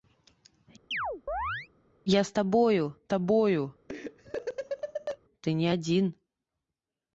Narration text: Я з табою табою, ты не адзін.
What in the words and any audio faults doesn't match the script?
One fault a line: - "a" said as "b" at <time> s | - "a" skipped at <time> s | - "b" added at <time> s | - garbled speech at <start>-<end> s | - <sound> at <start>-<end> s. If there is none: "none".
- chirp at 0.9-1.7 s
- laugh at 3.9-5.2 s